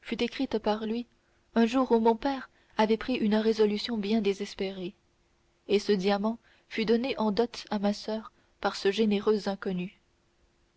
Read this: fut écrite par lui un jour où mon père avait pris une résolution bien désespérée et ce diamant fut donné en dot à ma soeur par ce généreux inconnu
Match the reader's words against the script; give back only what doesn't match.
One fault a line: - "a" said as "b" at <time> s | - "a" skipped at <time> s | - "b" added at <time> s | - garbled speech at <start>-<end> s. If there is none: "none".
none